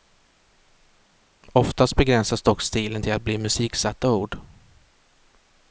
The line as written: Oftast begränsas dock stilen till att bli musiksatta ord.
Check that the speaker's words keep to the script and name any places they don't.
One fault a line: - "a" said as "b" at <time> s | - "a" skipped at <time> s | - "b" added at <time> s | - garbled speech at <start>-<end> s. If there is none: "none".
none